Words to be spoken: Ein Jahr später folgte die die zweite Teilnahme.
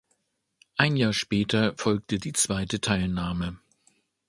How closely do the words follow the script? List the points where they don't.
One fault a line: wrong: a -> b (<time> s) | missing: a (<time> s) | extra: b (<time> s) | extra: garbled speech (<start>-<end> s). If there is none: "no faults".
missing: die (2.3 s)